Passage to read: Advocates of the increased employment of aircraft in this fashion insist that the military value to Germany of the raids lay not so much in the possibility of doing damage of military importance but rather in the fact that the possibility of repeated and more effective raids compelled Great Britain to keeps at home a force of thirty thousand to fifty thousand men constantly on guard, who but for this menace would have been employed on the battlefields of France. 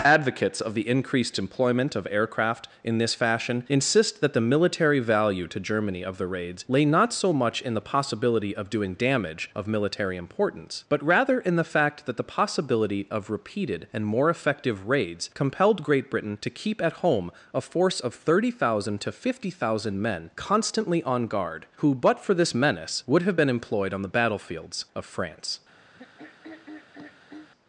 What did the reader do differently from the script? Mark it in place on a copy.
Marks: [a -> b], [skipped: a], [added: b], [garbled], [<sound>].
Advocates of the increased employment of aircraft in this fashion insist that the military value to Germany of the raids lay not so much in the possibility of doing damage of military importance but rather in the fact that the possibility of repeated and more effective raids compelled Great Britain to [keeps -> keep] at home a force of thirty thousand to fifty thousand men constantly on guard, who but for this menace would have been employed on the battlefields of France. [throat clearing]